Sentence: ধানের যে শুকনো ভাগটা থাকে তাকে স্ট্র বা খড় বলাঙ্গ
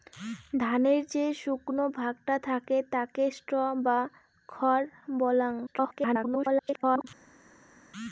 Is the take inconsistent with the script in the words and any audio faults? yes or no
yes